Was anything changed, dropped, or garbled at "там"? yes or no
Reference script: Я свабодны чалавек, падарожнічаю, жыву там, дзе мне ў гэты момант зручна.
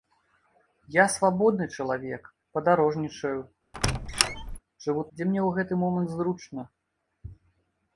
yes